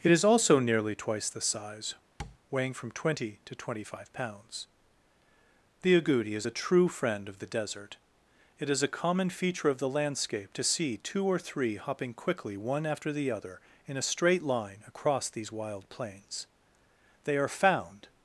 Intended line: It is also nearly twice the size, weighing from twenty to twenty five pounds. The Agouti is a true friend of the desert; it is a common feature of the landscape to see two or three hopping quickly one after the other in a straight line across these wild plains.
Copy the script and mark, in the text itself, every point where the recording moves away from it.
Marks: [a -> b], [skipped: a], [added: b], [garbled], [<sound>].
It is also nearly twice the size, [tap] weighing from twenty to twenty five pounds. The Agouti is a true friend of the desert; it is a common feature of the landscape to see two or three hopping quickly one after the other in a straight line across these wild plains. [added: They are found]